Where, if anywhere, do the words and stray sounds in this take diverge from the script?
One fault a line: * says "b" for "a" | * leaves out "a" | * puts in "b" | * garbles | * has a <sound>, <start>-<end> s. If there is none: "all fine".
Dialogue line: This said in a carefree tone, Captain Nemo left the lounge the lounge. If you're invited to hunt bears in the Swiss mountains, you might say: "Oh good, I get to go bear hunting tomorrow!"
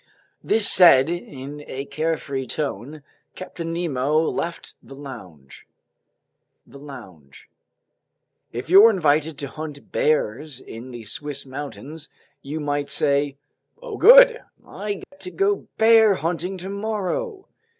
* has a dropout, 15.0-15.1 s